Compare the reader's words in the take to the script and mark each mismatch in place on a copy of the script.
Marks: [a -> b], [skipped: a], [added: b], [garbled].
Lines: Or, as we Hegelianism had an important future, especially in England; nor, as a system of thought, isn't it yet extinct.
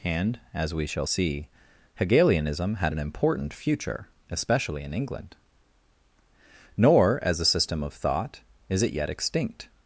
[Or, -> And] as we [added: shall see] Hegelianism had an important future, especially in England; nor, as a system of thought, [isn't -> is] it yet extinct.